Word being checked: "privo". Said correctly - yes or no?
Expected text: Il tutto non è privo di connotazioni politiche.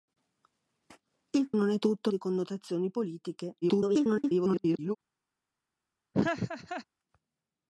no